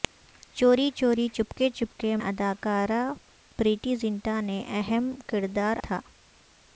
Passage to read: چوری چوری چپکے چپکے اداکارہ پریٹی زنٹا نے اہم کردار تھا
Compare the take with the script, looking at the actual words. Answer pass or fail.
pass